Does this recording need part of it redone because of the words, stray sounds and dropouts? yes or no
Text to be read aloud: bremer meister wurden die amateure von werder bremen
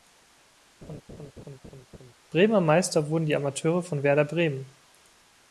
yes